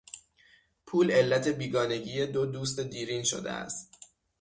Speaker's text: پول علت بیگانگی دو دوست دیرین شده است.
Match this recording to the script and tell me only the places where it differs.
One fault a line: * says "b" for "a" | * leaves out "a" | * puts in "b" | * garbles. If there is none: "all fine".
all fine